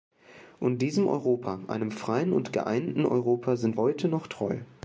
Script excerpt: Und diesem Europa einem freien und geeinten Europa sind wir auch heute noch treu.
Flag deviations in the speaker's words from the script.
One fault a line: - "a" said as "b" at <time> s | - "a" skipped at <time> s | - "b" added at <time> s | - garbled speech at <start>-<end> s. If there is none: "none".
- "wir auch" skipped at 3.8 s